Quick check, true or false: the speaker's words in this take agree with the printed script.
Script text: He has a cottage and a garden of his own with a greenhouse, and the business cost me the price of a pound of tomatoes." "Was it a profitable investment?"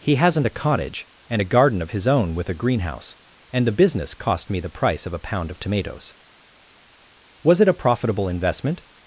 false